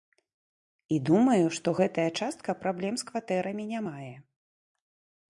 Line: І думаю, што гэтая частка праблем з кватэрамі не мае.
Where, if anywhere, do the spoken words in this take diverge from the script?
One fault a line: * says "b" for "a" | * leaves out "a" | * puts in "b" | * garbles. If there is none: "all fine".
all fine